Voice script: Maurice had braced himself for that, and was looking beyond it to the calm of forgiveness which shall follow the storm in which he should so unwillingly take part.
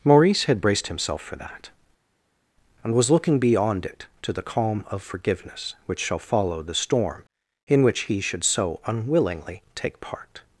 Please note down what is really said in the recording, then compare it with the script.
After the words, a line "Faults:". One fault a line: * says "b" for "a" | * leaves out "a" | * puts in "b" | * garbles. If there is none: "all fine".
Maurice had braced himself for that, and was looking beyond it to the calm of forgiveness which shall follow the storm in which he should so unwillingly take part.
Faults:
all fine